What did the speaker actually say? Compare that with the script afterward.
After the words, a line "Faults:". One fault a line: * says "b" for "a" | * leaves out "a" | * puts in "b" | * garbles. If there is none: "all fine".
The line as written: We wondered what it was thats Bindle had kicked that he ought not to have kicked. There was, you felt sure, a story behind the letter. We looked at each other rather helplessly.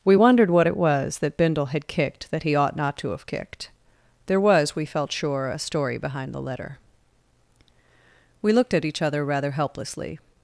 We wondered what it was that Bindle had kicked that he ought not to have kicked. There was, we felt sure, a story behind the letter. We looked at each other rather helplessly.
Faults:
* says "that" for "thats"
* says "we" for "you"